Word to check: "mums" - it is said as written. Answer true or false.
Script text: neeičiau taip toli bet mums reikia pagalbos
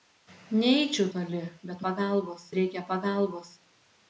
false